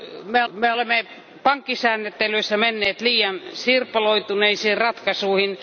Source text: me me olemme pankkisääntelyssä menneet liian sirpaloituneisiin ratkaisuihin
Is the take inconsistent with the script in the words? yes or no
no